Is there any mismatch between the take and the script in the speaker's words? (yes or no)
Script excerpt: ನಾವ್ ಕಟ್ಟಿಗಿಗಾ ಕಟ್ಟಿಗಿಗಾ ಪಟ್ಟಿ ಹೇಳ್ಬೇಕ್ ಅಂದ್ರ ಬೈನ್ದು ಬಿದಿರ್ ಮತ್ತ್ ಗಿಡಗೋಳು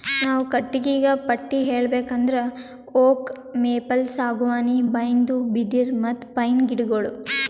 yes